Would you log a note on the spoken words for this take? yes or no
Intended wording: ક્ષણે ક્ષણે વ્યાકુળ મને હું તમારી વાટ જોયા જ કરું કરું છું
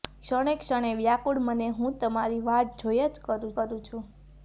no